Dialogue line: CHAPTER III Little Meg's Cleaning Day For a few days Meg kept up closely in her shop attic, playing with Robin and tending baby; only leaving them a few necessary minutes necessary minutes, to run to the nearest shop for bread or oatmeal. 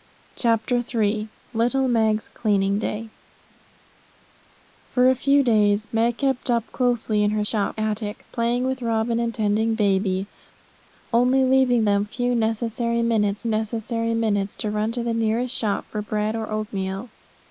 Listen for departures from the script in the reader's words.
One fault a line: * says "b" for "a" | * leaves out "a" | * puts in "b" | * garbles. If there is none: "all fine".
all fine